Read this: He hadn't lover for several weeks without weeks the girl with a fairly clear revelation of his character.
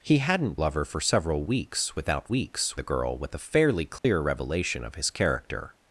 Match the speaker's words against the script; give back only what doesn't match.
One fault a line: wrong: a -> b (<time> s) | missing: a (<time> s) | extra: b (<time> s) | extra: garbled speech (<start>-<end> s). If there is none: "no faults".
no faults